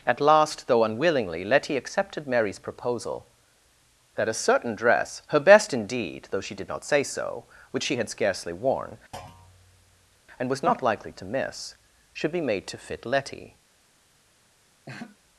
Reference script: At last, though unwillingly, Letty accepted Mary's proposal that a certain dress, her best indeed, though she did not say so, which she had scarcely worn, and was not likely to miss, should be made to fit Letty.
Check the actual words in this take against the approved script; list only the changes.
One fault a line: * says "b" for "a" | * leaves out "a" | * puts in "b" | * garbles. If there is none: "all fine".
all fine